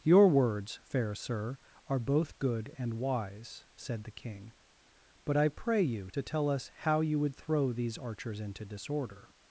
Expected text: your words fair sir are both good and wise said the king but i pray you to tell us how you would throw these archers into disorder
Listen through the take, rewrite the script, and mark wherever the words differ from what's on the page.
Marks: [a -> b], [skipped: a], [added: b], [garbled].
your words fair sir are both good and wise said the king but i pray you to tell us how you would throw these archers into disorder